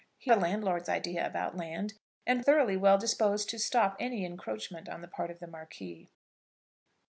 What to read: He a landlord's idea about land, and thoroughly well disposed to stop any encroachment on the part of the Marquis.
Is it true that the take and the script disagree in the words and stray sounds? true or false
false